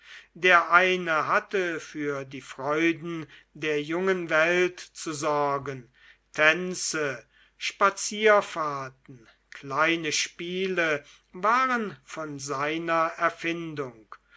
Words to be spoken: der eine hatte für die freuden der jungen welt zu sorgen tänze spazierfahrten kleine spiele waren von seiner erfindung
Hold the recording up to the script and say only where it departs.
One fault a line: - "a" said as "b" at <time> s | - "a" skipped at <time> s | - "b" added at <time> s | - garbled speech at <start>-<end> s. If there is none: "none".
none